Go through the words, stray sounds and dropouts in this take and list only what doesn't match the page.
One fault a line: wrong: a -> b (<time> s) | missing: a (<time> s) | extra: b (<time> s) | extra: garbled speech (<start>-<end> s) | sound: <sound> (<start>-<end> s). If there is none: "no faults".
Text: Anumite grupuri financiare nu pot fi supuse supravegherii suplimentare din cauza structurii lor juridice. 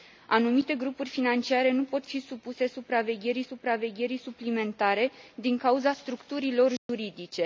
extra: supravegherii (3.4 s)
sound: dropout (6.8-6.9 s)